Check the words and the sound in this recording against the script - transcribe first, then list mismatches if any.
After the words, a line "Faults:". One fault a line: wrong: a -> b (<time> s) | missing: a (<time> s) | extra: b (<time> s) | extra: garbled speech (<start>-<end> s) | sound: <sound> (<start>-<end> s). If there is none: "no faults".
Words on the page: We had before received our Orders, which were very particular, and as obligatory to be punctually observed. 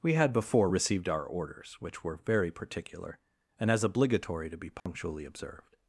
We had before received our Orders, which were very particular, and as obligatory to be punctually observed.
Faults:
sound: dropout (4.8-4.9 s)